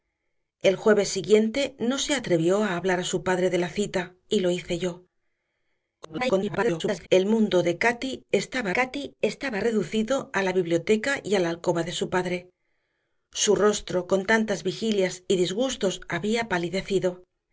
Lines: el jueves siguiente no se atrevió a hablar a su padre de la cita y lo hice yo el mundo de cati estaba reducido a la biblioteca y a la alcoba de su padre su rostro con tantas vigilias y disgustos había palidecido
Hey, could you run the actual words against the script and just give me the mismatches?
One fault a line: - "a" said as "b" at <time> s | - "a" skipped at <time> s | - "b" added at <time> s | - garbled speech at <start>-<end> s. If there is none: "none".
- garbled speech at 6.0-7.1 s
- "cati estaba" added at 8.7 s